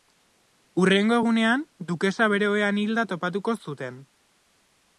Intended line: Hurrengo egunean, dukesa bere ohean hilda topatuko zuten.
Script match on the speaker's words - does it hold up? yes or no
yes